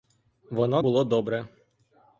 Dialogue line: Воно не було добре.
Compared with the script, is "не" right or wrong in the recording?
wrong